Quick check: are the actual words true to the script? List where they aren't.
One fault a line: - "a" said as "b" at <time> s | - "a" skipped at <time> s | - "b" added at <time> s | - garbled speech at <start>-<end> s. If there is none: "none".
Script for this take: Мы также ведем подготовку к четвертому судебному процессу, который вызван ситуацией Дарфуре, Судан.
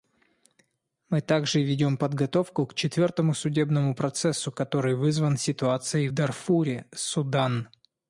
none